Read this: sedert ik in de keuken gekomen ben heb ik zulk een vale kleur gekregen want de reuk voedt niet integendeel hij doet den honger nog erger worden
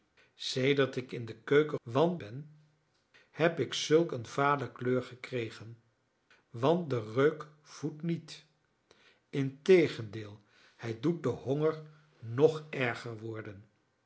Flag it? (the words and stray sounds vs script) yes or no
yes